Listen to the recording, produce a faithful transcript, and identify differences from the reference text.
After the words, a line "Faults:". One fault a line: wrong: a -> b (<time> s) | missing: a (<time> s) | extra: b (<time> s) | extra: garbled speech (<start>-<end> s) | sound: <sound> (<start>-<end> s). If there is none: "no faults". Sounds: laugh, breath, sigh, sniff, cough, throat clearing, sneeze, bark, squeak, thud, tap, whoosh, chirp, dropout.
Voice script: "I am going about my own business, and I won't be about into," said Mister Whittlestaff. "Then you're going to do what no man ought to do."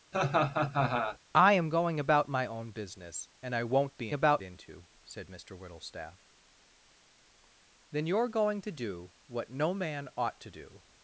"I am going about my own business, and I won't be about into," said Mister Whittlestaff. "Then you're going to do what no man ought to do."
Faults:
sound: laugh (0.1-1.2 s)